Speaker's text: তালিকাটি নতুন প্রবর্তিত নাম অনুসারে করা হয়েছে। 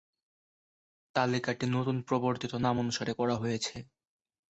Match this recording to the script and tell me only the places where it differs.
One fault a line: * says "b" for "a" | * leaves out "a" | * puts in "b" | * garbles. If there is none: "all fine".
all fine